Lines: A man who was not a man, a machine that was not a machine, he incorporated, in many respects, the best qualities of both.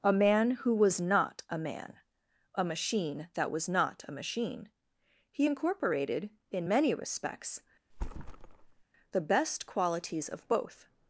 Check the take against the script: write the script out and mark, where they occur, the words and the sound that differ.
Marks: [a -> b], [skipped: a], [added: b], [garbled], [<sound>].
A man who was not a man, a machine that was not a machine, he incorporated, in many respects, [thud] the best qualities of both.